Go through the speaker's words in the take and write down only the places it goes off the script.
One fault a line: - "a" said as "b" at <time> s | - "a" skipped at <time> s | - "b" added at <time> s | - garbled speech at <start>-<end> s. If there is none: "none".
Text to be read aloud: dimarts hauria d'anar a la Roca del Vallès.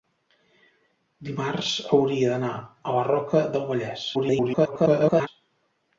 - garbled speech at 4.1-5.3 s